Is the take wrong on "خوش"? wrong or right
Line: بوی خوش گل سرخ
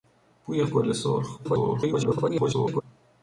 wrong